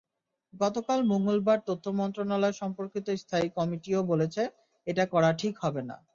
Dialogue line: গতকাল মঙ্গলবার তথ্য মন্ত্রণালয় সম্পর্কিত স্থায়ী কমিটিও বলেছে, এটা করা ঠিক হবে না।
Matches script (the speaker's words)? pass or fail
pass